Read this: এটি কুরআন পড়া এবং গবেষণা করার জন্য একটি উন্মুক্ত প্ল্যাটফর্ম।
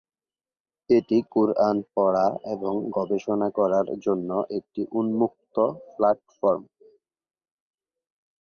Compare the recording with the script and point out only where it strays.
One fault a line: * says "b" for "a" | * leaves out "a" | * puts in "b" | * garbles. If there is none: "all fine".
all fine